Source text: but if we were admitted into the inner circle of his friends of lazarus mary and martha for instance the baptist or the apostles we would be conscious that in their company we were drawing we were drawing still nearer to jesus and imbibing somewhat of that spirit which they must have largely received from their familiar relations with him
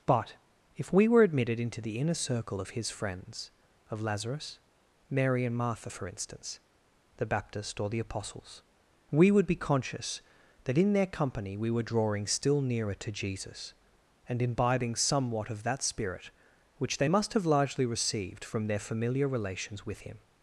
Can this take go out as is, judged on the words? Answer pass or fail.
fail